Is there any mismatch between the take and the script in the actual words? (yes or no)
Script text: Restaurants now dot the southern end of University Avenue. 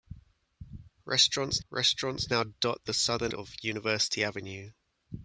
yes